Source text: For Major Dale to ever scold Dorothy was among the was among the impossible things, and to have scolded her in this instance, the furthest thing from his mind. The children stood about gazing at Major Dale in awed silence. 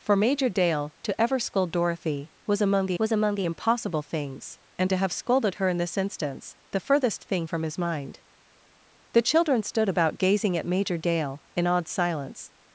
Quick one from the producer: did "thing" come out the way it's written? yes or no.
yes